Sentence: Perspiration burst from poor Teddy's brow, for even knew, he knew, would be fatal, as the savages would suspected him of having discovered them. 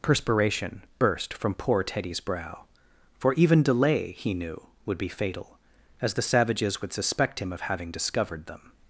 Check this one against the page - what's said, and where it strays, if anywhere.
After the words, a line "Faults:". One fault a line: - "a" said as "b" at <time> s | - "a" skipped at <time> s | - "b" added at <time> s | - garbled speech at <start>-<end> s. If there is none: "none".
Perspiration burst from poor Teddy's brow, for even delay, he knew, would be fatal, as the savages would suspect him of having discovered them.
Faults:
- "knew" said as "delay" at 3.6 s
- "suspected" said as "suspect" at 6.9 s